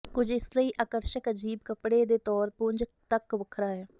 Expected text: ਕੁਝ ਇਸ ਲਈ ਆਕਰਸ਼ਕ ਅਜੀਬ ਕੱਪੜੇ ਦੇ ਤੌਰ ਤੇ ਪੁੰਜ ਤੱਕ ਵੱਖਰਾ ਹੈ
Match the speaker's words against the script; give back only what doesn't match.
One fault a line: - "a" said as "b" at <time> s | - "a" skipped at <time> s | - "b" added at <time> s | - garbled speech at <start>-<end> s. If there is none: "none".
- "ਤੇ" skipped at 2.5 s